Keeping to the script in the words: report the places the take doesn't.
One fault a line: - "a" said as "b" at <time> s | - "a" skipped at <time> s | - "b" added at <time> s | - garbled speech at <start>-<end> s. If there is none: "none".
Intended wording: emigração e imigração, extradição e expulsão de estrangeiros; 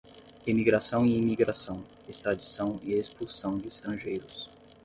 none